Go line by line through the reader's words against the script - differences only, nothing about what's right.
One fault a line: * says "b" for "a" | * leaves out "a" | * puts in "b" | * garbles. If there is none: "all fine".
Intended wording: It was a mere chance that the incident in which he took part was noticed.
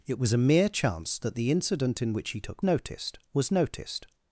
* says "noticed" for "part"